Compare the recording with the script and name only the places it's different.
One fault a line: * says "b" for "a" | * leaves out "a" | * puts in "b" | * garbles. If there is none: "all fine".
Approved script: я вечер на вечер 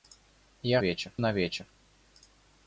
all fine